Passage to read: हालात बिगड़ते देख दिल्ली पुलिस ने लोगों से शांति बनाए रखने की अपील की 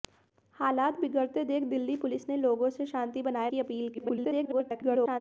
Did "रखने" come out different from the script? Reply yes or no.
yes